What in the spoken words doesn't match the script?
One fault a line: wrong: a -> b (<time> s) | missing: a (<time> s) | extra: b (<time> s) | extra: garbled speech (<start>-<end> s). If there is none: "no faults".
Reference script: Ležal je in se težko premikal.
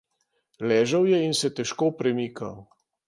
no faults